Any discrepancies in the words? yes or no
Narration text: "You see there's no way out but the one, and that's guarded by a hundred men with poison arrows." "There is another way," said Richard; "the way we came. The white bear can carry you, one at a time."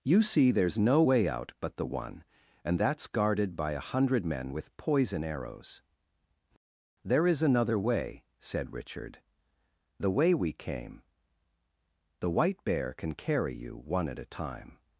no